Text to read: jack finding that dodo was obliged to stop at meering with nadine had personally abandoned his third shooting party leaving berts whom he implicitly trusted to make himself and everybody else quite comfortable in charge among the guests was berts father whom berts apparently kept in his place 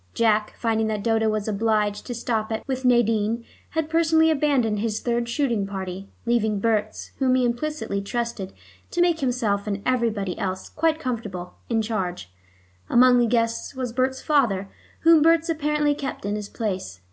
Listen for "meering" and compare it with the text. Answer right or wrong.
wrong